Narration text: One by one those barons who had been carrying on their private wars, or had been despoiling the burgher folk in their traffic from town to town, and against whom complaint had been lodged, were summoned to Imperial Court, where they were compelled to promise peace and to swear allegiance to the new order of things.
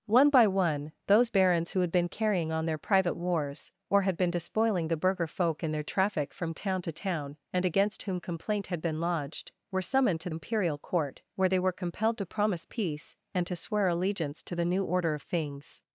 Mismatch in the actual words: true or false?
false